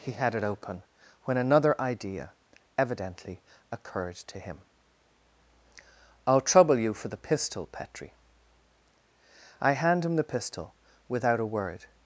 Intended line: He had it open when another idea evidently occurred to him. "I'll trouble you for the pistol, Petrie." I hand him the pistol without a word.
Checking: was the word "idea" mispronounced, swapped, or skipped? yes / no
no